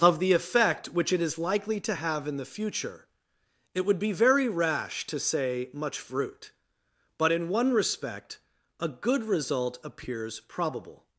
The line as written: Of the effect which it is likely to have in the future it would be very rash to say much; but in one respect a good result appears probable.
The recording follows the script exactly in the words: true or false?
false